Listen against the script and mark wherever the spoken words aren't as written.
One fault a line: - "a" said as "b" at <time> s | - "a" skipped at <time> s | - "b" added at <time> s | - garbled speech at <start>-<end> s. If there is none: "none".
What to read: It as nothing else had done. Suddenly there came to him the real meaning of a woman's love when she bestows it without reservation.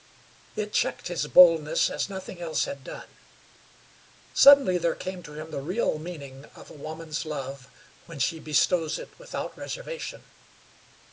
- "checked his boldness" added at 0.7 s